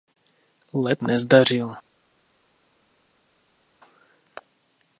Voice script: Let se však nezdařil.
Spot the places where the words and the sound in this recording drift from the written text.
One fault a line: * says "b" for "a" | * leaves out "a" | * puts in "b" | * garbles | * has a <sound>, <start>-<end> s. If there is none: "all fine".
* leaves out "se však"